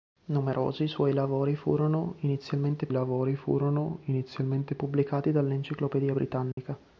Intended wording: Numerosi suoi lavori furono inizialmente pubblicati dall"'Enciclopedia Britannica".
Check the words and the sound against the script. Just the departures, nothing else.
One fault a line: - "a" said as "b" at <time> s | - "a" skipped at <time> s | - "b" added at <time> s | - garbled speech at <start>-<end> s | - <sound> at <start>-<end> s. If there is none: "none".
- "lavori furono inizialmente" added at 2.9 s
- dropout at 6.5-6.6 s